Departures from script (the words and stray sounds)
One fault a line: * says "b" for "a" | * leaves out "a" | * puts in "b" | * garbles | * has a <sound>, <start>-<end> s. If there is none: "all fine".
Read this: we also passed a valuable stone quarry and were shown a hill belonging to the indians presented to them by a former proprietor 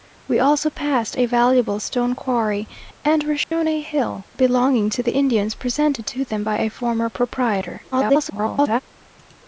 * has a dropout, 3.4-3.5 s
* garbles